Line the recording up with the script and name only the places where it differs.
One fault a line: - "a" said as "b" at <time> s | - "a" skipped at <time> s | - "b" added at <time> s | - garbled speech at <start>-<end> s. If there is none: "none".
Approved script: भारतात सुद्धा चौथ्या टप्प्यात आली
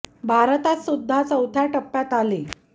none